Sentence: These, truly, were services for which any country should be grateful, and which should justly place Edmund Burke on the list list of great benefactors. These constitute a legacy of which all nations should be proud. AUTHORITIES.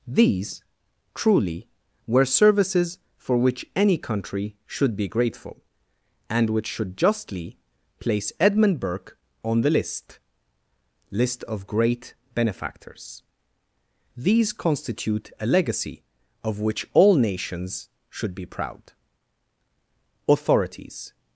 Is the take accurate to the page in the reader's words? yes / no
yes